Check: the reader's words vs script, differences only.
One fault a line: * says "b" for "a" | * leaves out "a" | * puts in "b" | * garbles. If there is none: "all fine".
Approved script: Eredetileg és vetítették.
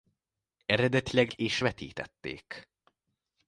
all fine